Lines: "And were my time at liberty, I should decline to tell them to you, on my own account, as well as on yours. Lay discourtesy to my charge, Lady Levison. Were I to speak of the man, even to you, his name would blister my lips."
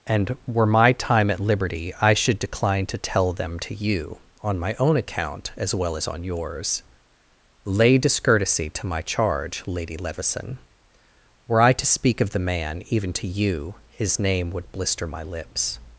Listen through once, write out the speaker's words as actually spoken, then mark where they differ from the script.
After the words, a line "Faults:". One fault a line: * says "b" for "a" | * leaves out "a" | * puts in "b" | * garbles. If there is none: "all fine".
"And were my time at liberty, I should decline to tell them to you, on my own account, as well as on yours. Lay discourtesy to my charge, Lady Levison. Were I to speak of the man, even to you, his name would blister my lips."
Faults:
all fine